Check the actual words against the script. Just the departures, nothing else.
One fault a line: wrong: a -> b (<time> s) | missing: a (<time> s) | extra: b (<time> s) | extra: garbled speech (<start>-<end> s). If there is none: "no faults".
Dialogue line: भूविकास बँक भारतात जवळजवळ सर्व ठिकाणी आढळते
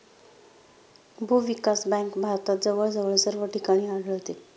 no faults